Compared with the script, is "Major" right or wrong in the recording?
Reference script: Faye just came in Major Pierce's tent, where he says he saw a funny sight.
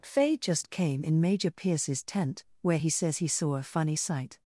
right